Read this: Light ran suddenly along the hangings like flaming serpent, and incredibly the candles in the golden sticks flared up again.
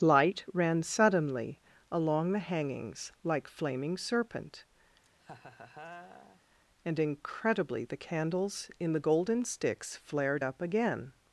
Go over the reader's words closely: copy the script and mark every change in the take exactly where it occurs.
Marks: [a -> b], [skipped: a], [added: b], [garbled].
Light ran suddenly along the hangings like flaming serpent, and incredibly the candles in the golden sticks flared up again.